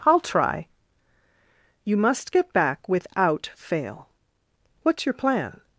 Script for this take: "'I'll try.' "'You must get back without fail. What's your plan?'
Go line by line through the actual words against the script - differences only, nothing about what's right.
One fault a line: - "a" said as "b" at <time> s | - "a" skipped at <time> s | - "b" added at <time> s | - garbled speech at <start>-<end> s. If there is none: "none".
none